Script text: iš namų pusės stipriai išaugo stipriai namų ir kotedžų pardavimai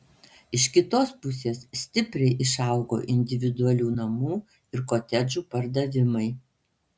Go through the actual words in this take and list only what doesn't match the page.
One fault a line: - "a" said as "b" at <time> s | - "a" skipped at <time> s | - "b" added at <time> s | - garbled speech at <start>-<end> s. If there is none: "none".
- "namų" said as "kitos" at 0.8 s
- "stipriai" said as "individualių" at 3.2 s